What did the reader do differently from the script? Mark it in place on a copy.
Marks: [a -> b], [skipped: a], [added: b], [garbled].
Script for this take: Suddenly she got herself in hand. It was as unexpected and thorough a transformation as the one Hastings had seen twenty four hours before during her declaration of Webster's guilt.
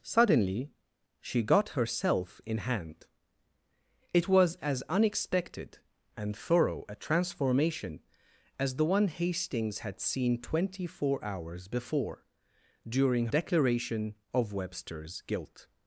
Suddenly she got herself in hand. It was as unexpected and thorough a transformation as the one Hastings had seen twenty four hours before during [skipped: her] declaration of Webster's guilt.